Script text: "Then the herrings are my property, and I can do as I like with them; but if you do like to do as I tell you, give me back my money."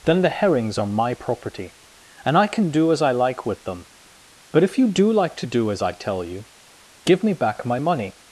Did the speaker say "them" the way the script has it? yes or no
yes